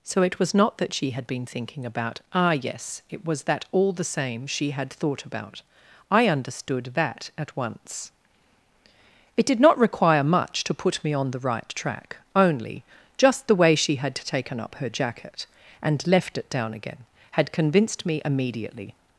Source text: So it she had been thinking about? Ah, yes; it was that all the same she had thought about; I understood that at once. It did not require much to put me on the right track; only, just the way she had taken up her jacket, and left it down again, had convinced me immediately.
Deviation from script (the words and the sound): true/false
true